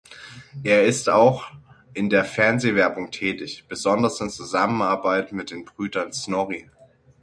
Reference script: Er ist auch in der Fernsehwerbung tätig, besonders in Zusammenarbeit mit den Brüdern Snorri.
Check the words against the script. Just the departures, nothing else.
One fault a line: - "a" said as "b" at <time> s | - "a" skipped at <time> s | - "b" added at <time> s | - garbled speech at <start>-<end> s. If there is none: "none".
none